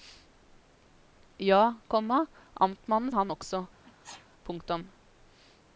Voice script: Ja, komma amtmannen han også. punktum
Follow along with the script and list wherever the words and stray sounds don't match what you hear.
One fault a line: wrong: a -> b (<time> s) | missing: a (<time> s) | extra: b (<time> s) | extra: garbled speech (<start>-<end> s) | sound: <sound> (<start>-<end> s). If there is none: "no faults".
sound: sneeze (3.8-4.3 s)